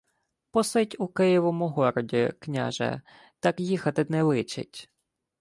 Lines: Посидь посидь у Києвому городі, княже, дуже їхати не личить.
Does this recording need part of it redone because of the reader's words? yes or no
yes